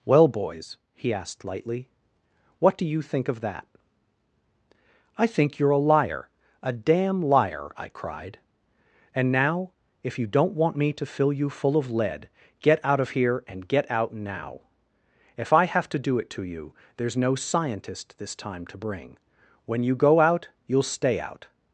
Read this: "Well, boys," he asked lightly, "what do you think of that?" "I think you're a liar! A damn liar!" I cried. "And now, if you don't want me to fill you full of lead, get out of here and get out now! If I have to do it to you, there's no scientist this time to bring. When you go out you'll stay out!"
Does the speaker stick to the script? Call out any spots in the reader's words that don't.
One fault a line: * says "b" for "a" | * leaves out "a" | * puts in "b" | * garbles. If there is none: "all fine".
all fine